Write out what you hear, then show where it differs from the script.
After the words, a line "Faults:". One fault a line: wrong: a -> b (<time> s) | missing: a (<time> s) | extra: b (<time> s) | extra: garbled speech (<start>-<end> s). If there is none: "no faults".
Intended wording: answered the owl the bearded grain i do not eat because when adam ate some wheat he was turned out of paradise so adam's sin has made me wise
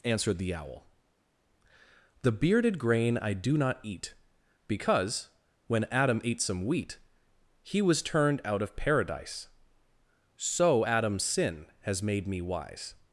answered the owl the bearded grain i do not eat because when adam ate some wheat he was turned out of paradise so adam's sin has made me wise
Faults:
no faults